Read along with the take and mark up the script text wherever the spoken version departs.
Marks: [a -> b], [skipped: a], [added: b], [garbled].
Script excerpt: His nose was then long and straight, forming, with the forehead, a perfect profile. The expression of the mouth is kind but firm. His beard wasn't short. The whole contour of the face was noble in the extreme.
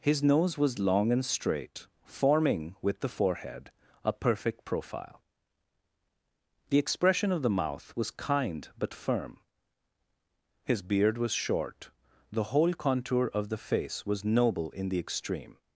His nose was [skipped: then] long and straight, forming, with the forehead, a perfect profile. The expression of the mouth [is -> was] kind but firm. His beard [wasn't -> was] short. The whole contour of the face was noble in the extreme.